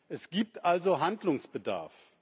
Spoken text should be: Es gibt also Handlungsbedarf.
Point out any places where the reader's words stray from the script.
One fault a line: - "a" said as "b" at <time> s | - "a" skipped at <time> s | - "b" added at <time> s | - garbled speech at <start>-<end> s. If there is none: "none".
none